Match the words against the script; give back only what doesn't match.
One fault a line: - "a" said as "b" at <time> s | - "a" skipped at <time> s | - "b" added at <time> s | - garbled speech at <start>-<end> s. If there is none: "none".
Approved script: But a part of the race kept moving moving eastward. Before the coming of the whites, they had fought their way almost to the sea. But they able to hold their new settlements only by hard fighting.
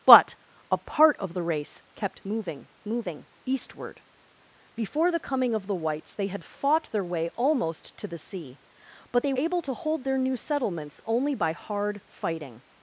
none